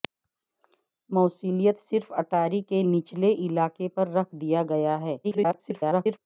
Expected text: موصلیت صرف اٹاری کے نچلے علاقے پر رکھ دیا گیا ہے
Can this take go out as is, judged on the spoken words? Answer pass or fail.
fail